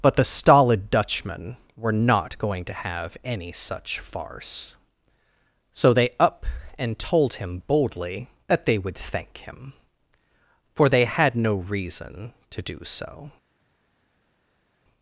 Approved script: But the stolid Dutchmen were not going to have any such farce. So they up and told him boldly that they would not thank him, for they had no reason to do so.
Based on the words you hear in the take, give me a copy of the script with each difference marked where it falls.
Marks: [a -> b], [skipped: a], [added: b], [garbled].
But the stolid Dutchmen were not going to have any such farce. So they up and told him boldly that they would [skipped: not] thank him, for they had no reason to do so.